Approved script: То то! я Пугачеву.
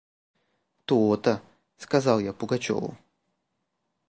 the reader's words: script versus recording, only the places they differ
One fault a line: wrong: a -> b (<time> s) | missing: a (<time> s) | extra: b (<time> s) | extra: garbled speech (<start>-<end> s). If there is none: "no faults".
extra: сказал (1.8 s)